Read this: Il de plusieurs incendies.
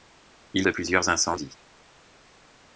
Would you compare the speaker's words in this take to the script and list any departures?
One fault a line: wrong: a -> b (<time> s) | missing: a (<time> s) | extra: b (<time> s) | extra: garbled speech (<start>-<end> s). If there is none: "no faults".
no faults